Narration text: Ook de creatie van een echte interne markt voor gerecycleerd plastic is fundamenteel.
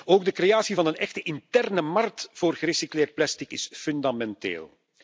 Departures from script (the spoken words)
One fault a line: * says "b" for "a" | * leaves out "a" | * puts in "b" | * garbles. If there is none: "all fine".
all fine